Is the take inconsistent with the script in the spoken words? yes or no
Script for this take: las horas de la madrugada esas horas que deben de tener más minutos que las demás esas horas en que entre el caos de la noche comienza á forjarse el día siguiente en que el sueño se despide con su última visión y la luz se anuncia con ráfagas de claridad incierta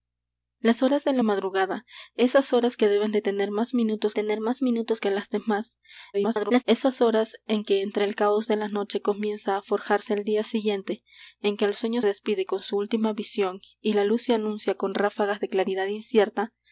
yes